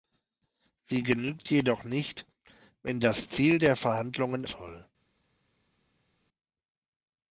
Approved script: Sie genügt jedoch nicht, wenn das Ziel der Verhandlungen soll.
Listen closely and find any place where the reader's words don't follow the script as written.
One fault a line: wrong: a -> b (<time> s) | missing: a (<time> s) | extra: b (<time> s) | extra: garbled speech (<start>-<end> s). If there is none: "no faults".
no faults